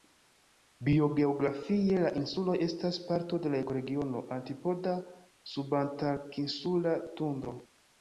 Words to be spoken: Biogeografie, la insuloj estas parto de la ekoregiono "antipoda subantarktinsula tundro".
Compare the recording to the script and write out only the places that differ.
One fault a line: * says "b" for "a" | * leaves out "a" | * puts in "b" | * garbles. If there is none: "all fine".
all fine